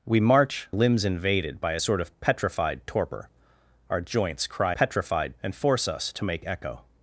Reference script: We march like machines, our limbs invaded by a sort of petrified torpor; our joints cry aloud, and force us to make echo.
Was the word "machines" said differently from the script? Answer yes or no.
yes